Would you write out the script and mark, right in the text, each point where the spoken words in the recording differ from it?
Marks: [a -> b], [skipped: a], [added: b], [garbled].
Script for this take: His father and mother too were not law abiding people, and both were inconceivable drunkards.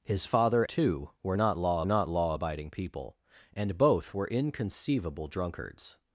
His father [and mother too were -> too were not law] not law abiding people, and both were inconceivable drunkards.